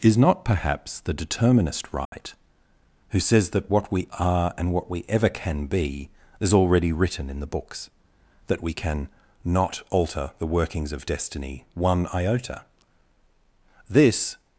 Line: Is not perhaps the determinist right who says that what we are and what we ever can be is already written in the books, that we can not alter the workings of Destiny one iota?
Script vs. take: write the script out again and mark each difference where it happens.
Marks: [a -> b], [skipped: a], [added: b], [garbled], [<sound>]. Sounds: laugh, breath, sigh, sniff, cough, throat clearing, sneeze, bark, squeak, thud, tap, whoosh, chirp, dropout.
Is not perhaps the determinist right [dropout] who says that what we are and what we ever can be is already written in the books, that we can not alter the workings of Destiny one iota? [added: This]